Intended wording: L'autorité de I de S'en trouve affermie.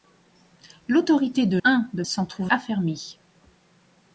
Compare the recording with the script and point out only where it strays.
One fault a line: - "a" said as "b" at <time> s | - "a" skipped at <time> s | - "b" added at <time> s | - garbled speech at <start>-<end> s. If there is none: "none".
none